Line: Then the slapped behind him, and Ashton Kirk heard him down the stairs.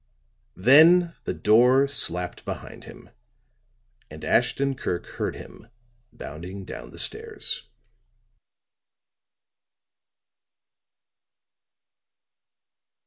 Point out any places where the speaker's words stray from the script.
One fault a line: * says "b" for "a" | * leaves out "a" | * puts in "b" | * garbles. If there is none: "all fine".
* puts in "door"
* puts in "bounding"